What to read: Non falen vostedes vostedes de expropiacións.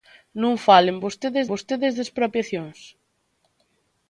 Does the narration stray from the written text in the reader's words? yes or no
no